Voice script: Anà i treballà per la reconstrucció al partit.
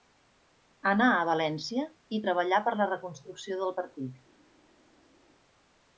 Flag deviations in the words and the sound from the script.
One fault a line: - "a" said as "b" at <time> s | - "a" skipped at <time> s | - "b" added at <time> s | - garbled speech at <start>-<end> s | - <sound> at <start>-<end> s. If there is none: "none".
- "a València" added at 1.2 s
- "al" said as "del" at 3.6 s